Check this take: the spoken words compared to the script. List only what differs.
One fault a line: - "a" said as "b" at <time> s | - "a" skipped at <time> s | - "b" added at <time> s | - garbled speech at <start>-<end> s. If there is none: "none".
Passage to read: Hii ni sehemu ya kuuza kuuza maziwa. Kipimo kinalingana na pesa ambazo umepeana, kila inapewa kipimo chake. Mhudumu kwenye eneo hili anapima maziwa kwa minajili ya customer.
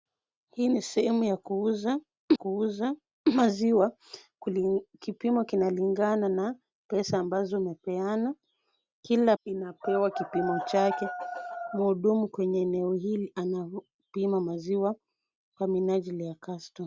none